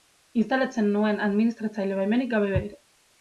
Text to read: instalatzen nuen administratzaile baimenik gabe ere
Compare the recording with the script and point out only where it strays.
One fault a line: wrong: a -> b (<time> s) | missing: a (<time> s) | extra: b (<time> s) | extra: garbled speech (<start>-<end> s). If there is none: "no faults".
no faults